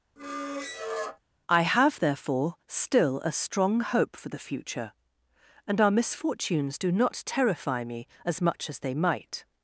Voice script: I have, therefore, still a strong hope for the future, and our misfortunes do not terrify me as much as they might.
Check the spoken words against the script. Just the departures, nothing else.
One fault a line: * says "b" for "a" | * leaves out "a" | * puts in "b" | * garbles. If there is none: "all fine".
all fine